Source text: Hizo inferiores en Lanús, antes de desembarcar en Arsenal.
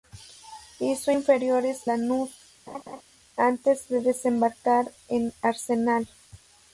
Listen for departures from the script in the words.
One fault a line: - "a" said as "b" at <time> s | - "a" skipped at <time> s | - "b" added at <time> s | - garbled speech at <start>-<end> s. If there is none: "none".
- "en" skipped at 1.9 s